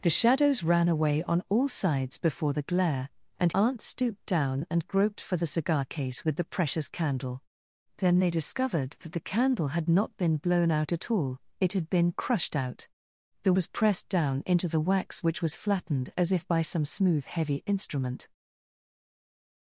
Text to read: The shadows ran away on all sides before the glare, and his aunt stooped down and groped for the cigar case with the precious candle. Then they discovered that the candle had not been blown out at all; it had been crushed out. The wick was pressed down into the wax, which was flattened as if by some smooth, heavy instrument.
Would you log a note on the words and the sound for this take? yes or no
yes